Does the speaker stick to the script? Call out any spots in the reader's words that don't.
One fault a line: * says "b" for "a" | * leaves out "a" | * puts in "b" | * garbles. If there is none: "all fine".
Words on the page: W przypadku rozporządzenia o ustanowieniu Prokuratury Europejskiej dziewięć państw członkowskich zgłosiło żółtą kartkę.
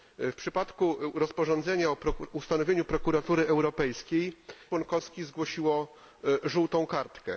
* leaves out "dziewięć państw"